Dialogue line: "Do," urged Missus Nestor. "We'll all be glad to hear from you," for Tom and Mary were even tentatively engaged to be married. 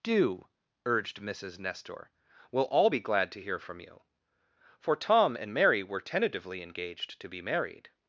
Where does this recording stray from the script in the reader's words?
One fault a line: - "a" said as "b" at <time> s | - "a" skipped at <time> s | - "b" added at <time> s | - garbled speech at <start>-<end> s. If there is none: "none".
- "even" skipped at 6.0 s